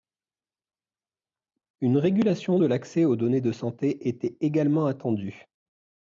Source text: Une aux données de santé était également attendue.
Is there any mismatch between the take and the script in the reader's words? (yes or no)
yes